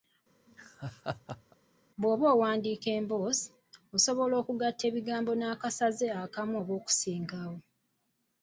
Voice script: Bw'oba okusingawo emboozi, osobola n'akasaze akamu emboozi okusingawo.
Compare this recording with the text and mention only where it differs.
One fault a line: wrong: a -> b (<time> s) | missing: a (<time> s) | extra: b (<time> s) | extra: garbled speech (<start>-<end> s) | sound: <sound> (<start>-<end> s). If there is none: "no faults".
sound: laugh (0.5-1.6 s)
wrong: okusingawo -> owandiika (2.3 s)
extra: okugatta ebigambo (4.4 s)
wrong: emboozi -> oba (6.6 s)